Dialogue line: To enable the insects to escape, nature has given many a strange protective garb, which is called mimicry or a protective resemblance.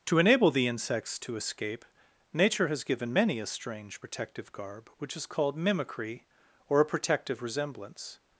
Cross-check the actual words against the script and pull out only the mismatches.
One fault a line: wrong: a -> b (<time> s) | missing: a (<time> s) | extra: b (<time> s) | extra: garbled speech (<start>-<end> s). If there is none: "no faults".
no faults